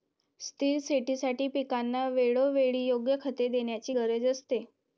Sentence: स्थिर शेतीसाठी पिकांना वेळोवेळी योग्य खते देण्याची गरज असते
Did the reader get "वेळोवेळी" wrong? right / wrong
right